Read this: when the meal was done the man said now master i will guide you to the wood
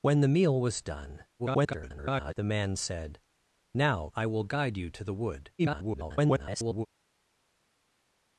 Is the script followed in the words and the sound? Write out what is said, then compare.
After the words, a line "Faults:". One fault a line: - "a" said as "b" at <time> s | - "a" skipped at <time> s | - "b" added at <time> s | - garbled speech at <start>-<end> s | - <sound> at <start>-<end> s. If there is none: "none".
when the meal was done [garbled] the man said now i will guide you to the wood [garbled]
Faults:
- garbled speech at 1.4-2.3 s
- "master" skipped at 4.1 s
- garbled speech at 5.6-6.9 s